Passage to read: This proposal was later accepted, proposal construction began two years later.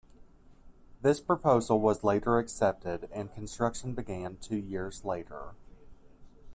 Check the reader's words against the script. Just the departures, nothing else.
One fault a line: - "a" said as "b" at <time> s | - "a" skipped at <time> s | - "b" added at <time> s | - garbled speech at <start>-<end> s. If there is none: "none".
- "proposal" said as "and" at 3.1 s